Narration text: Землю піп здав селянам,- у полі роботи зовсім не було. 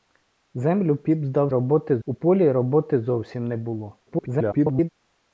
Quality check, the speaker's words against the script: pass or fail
fail